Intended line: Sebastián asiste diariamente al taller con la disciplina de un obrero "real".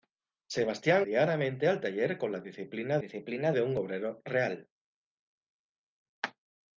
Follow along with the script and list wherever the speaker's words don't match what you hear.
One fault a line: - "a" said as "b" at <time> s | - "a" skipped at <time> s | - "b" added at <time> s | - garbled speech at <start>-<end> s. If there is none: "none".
- "asiste" skipped at 1.1 s
- "disciplina" added at 3.0 s